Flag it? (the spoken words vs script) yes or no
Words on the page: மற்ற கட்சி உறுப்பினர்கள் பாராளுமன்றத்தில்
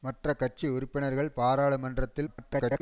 yes